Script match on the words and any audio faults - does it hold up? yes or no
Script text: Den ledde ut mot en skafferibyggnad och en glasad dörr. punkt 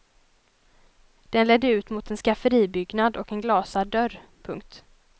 yes